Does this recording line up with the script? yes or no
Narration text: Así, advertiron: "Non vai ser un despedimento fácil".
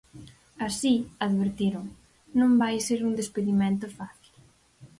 yes